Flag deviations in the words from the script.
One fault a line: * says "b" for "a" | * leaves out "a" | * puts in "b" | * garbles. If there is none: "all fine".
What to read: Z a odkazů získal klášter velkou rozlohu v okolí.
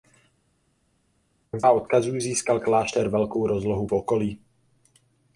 all fine